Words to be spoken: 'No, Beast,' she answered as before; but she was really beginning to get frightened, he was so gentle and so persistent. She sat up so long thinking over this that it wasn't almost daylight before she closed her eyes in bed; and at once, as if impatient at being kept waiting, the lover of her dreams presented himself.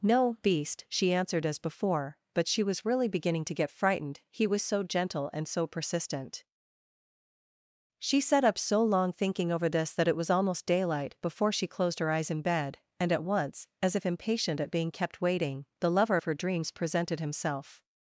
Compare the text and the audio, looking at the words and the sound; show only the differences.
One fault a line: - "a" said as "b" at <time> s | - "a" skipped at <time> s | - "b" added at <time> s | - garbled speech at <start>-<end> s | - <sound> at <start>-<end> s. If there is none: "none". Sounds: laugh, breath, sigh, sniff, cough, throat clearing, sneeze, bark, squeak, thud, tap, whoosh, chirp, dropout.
- "wasn't" said as "was" at 10.2 s